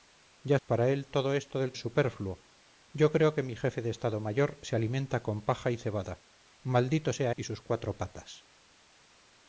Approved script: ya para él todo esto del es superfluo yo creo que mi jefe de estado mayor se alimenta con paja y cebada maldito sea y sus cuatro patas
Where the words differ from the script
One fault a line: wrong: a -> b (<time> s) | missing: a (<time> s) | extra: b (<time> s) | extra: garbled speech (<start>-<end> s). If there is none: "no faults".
no faults